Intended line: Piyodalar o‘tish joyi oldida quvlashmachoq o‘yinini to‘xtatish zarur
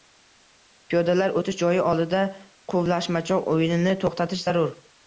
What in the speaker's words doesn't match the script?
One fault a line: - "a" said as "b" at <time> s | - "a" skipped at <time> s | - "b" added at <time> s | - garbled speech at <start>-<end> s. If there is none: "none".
none